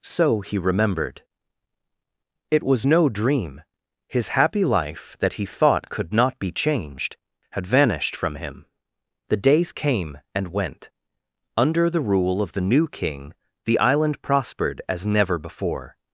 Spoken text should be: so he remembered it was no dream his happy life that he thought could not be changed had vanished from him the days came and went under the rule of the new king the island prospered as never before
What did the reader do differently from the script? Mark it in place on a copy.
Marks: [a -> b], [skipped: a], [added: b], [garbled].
so he remembered it was no dream his happy life that he thought could not be changed had vanished from him the days came and went under the rule of the new king the island prospered as never before